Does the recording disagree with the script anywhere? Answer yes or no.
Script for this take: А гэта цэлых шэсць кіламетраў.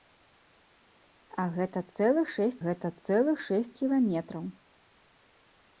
yes